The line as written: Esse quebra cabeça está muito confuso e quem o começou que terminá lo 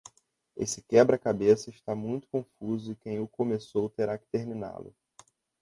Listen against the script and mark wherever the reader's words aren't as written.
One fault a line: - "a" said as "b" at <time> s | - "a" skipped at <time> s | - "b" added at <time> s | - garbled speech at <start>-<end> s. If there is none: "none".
- "terá" added at 3.9 s